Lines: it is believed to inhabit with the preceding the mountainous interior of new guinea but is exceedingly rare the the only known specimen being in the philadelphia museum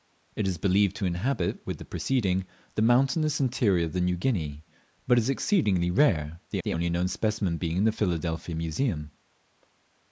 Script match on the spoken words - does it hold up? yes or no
yes